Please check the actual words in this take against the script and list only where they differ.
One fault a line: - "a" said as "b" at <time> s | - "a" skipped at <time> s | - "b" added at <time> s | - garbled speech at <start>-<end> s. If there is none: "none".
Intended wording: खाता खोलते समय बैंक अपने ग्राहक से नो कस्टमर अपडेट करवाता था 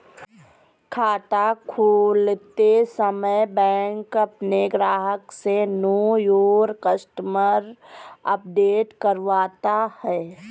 - "योर" added at 6.2 s
- "था" said as "है" at 10.0 s